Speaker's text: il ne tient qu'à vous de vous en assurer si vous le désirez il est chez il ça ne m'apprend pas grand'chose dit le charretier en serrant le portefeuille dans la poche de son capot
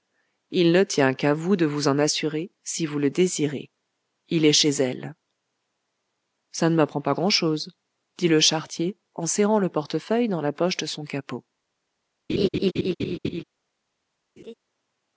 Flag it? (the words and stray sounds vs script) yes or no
yes